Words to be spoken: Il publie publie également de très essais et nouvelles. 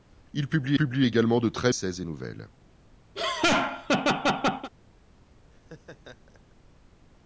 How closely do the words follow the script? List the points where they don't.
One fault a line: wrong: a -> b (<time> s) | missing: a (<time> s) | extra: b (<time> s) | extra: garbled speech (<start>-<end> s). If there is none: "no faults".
no faults